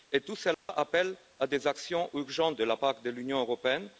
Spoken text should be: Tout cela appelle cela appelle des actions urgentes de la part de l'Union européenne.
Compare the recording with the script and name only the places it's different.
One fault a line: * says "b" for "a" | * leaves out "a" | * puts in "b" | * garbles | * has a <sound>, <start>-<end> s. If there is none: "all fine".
* has a dropout, 0.5-0.7 s
* leaves out "cela appelle"